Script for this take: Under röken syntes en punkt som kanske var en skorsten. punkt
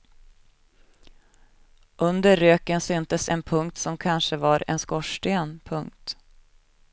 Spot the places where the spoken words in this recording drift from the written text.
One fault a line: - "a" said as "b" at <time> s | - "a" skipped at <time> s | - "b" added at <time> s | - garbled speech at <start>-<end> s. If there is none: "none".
none